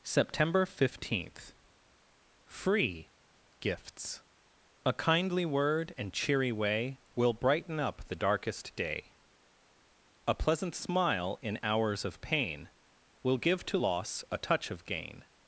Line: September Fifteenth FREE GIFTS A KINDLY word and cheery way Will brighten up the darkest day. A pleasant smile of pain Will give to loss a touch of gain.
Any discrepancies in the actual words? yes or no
yes